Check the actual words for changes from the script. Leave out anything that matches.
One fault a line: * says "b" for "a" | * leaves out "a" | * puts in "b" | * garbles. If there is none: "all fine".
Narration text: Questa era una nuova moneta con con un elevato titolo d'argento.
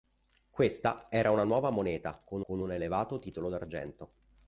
all fine